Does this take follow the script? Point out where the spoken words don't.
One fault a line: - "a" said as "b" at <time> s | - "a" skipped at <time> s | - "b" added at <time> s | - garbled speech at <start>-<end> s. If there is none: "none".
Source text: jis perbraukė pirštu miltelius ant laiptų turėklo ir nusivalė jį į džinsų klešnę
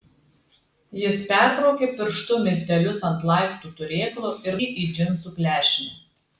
- "nusivalė" skipped at 4.6 s